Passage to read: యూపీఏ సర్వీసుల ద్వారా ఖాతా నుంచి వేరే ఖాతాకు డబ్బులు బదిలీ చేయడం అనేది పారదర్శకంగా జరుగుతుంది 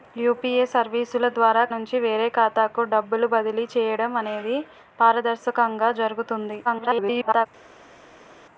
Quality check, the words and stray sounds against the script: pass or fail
fail